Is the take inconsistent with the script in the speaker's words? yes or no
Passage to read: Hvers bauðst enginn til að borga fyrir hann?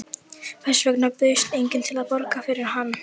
yes